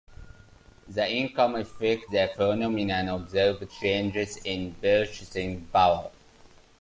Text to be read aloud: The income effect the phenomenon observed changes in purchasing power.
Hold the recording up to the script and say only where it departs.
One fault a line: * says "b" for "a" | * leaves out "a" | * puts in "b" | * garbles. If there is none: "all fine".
all fine